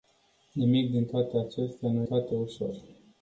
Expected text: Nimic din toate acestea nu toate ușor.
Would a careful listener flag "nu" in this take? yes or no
no